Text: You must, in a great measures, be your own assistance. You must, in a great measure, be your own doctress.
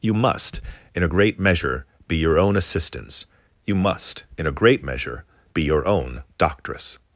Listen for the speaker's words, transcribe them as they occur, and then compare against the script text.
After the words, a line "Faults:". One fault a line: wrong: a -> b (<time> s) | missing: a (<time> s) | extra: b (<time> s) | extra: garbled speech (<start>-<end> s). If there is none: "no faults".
You must, in a great measure, be your own assistance. You must, in a great measure, be your own doctress.
Faults:
wrong: measures -> measure (1.4 s)